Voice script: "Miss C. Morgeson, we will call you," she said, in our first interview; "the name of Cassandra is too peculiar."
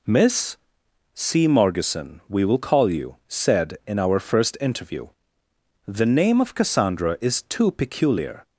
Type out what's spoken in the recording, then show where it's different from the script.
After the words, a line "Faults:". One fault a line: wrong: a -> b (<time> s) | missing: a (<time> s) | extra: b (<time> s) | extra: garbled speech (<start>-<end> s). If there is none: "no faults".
"Miss C. Morgeson, we will call you," said, in our first interview; "the name of Cassandra is too peculiar."
Faults:
missing: she (3.2 s)